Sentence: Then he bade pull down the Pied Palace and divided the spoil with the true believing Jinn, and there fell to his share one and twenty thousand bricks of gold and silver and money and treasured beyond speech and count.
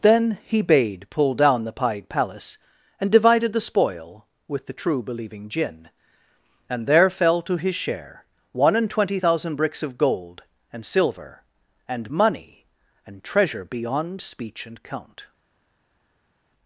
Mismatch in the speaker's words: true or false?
true